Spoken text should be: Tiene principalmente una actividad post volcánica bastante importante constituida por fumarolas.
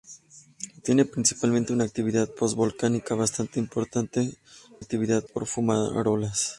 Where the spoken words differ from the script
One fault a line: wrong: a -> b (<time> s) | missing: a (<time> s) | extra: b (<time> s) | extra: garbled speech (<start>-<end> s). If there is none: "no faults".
wrong: constituida -> actividad (4.8 s)